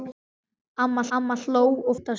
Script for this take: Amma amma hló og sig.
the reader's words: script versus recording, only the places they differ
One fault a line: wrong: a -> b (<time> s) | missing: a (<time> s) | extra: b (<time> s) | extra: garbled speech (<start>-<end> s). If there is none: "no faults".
no faults